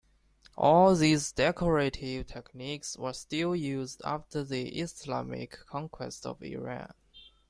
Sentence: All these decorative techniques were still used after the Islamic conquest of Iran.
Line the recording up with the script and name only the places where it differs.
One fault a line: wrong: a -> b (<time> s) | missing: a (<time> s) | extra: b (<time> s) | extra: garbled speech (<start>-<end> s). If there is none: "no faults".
no faults